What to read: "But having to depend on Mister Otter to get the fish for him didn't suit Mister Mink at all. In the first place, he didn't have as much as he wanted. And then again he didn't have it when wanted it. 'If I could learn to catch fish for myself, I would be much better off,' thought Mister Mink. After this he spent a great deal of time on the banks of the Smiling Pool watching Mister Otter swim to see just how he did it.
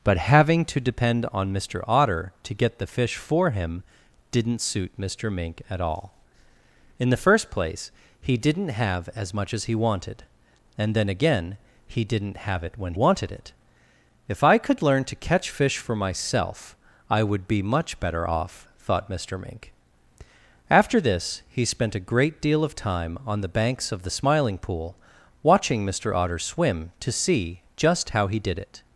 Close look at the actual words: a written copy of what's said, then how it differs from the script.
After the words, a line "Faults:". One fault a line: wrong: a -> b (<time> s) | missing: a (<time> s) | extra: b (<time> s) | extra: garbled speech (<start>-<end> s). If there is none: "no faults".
"But having to depend on Mister Otter to get the fish for him didn't suit Mister Mink at all. In the first place, he didn't have as much as he wanted. And then again he didn't have it when wanted it. 'If I could learn to catch fish for myself, I would be much better off,' thought Mister Mink. After this he spent a great deal of time on the banks of the Smiling Pool watching Mister Otter swim to see just how he did it.
Faults:
no faults